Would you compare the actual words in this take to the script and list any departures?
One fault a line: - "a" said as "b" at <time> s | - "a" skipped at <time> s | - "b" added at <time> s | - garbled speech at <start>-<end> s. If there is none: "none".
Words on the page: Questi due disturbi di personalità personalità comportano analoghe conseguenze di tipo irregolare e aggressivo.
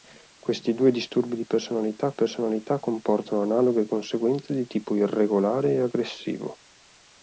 none